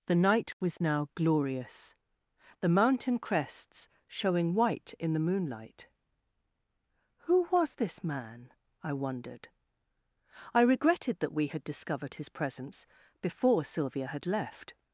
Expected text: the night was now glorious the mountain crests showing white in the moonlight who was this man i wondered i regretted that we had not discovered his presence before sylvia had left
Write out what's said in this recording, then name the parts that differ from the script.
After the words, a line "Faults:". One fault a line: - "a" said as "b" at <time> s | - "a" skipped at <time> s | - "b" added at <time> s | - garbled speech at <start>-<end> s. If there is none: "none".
the night was now glorious the mountain crests showing white in the moonlight who was this man i wondered i regretted that we had discovered his presence before sylvia had left
Faults:
- "not" skipped at 11.6 s